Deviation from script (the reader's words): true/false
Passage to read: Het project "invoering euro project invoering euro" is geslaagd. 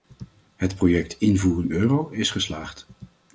true